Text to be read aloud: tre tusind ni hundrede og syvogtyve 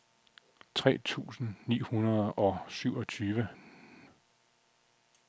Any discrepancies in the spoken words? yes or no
no